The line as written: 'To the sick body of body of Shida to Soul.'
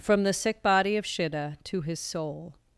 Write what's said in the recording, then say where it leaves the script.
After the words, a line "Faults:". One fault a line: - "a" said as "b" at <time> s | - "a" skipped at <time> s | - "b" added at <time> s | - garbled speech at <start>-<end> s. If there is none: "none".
'From the sick body of Shida to his Soul.'
Faults:
- "To" said as "From" at 0.0 s
- "body of" skipped at 1.0 s
- "his" added at 1.8 s